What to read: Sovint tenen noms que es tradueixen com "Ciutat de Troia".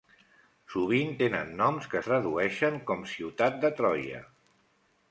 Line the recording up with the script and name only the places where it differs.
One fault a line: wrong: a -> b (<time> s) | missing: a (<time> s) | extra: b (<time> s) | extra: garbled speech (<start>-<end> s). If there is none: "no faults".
missing: es (2.0 s)